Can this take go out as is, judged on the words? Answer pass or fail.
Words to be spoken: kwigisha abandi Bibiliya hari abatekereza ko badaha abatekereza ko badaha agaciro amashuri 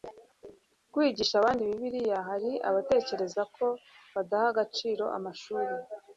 fail